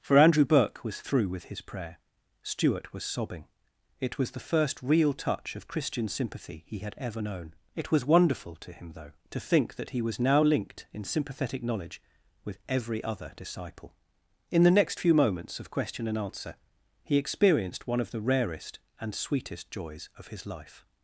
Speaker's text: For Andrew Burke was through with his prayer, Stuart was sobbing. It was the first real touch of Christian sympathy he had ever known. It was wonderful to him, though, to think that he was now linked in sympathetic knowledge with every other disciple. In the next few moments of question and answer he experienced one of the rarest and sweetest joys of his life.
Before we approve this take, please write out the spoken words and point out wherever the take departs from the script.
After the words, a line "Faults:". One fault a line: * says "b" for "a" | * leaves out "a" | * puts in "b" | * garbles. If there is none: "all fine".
For Andrew Burke was through with his prayer, Stuart was sobbing. It was the first real touch of Christian sympathy he had ever known. It was wonderful to him, though, to think that he was now linked in sympathetic knowledge with every other disciple. In the next few moments of question and answer he experienced one of the rarest and sweetest joys of his life.
Faults:
all fine